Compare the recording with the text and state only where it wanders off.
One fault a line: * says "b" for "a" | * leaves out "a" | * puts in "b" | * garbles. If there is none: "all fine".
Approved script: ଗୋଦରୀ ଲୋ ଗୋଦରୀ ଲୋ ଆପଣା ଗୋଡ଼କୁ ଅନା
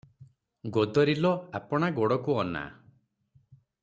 * leaves out "ଗୋଦରୀ ଲୋ"